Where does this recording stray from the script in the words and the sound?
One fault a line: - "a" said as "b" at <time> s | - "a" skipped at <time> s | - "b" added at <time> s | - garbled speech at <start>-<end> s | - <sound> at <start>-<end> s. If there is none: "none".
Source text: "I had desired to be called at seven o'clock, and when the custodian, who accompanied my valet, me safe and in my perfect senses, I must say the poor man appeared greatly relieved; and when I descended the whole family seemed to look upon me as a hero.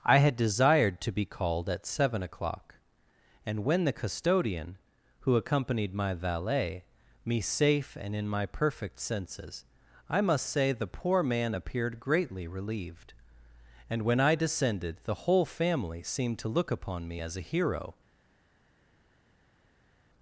none